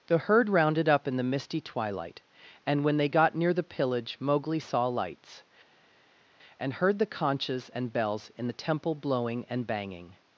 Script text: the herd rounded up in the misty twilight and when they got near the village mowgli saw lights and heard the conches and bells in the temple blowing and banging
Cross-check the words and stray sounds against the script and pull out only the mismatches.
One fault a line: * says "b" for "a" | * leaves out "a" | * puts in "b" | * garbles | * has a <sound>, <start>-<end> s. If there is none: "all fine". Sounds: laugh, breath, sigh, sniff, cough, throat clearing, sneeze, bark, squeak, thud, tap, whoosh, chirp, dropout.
* says "pillage" for "village"